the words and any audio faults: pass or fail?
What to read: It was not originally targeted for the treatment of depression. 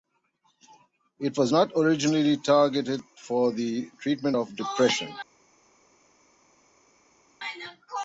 pass